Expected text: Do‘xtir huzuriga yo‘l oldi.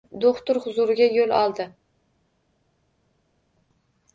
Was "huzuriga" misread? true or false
false